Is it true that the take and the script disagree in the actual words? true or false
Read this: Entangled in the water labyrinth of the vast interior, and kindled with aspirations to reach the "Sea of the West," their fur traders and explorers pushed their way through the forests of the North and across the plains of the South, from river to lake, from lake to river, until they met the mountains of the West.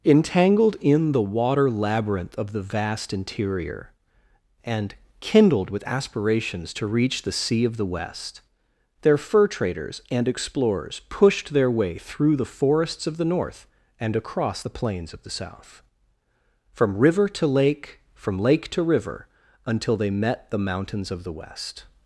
false